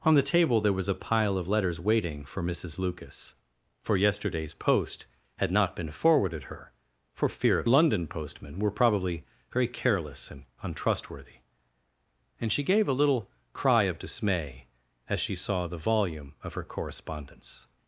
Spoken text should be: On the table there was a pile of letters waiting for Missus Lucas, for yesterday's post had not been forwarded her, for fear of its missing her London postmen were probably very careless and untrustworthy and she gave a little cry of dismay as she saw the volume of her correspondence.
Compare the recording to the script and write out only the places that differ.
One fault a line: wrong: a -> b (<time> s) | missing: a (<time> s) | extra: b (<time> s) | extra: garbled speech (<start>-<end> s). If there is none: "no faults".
missing: its missing her (7.7 s)